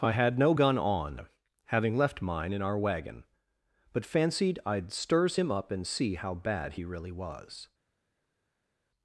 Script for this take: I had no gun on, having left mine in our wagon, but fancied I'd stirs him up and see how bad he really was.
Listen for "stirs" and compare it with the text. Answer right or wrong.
right